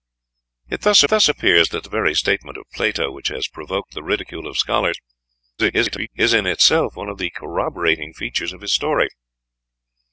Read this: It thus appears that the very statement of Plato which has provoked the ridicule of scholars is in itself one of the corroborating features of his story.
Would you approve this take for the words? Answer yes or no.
no